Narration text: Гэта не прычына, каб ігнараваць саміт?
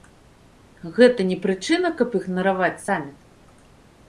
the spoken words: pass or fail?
pass